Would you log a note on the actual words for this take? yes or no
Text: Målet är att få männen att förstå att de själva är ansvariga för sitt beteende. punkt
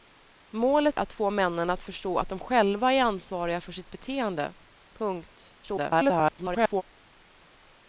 yes